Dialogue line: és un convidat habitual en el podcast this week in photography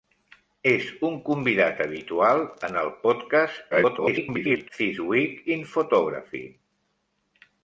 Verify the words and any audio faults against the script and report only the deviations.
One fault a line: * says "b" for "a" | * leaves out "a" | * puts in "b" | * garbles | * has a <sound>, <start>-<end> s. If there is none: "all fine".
* garbles